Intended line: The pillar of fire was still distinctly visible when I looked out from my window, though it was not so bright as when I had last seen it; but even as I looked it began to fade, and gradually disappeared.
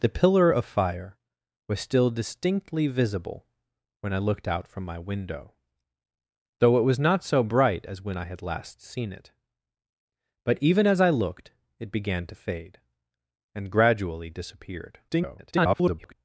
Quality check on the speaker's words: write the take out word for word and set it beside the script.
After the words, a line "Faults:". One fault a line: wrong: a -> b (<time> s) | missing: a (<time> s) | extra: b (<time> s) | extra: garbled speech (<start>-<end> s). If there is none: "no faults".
The pillar of fire was still distinctly visible when I looked out from my window, though it was not so bright as when I had last seen it; but even as I looked it began to fade, and gradually disappeared. [garbled]
Faults:
extra: garbled speech (15.1-16.1 s)